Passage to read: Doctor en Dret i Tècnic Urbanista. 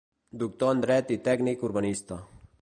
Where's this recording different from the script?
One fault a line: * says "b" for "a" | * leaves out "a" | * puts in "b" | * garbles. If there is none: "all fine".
all fine